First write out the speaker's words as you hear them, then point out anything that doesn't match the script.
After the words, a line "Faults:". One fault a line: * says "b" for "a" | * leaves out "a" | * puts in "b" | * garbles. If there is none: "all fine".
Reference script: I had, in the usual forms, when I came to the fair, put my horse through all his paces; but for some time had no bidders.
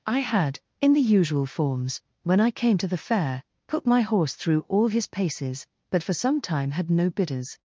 I had, in the usual forms, when I came to the fair, put my horse through all his paces; but for some time had no bidders.
Faults:
all fine